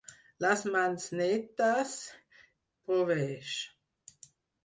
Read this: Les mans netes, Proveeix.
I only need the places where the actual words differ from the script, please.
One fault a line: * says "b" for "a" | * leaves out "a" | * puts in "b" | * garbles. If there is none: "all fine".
all fine